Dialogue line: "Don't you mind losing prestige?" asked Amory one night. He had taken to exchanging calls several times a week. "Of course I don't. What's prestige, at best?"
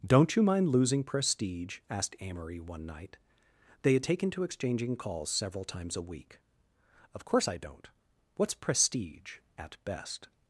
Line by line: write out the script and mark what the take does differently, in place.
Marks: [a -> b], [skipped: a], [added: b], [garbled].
"Don't you mind losing prestige?" asked Amory one night. [He -> They] had taken to exchanging calls several times a week. "Of course I don't. What's prestige, at best?"